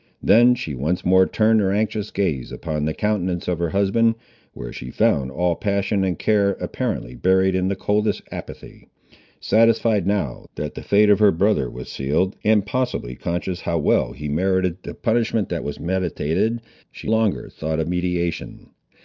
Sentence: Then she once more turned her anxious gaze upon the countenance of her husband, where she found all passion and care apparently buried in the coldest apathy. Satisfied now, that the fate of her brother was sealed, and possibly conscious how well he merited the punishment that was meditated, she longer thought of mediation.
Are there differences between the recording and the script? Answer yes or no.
no